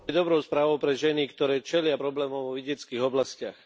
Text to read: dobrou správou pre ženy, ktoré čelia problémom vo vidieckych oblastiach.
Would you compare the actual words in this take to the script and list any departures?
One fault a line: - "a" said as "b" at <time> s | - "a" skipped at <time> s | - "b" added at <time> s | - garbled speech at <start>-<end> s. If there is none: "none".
none